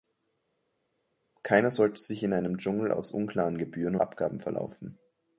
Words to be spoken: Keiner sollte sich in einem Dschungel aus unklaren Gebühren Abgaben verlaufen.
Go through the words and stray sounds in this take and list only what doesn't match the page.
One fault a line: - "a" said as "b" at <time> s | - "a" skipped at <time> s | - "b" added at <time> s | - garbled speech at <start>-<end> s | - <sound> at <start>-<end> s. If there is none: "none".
none